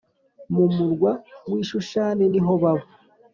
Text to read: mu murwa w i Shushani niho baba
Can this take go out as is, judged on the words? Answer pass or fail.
pass